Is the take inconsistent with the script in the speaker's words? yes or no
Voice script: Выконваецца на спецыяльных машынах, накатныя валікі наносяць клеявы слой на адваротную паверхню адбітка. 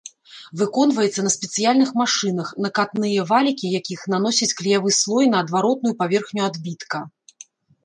yes